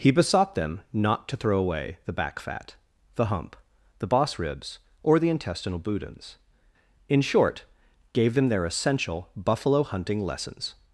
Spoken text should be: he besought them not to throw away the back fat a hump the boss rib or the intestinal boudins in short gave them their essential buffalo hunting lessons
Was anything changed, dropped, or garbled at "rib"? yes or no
yes